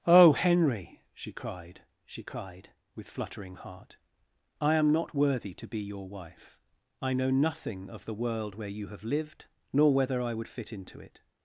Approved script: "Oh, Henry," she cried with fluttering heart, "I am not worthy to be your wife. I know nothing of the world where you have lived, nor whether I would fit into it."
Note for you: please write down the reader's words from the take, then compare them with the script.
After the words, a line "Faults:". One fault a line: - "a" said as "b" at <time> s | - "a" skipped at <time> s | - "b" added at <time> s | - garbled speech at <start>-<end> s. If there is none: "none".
"Oh, Henry," she cried she cried with fluttering heart, "I am not worthy to be your wife. I know nothing of the world where you have lived, nor whether I would fit into it."
Faults:
- "she cried" added at 2.0 s